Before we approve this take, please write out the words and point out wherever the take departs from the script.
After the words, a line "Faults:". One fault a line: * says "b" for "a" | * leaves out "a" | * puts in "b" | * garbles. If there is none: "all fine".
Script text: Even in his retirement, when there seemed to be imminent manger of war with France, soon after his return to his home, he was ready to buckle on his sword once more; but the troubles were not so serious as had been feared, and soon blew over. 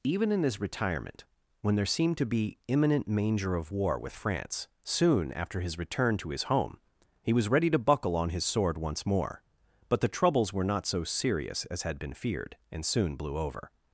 Even in his retirement, when there seemed to be imminent manger of war with France, soon after his return to his home, he was ready to buckle on his sword once more; but the troubles were not so serious as had been feared, and soon blew over.
Faults:
all fine